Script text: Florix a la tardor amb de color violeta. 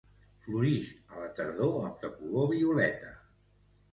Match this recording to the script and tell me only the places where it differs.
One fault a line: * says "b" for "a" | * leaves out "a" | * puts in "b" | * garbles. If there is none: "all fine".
all fine